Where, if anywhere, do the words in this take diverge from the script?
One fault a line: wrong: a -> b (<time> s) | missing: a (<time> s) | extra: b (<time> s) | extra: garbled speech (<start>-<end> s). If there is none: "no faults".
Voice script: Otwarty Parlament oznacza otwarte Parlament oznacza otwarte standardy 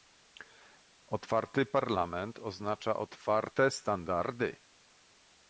missing: Parlament oznacza otwarte (3.7 s)